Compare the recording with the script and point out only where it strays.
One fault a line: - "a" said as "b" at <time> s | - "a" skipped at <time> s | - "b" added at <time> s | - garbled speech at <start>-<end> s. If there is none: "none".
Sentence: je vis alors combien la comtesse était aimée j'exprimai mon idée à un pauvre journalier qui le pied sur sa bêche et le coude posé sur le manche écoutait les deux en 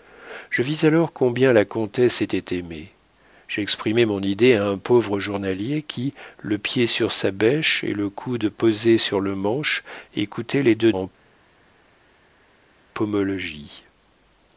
none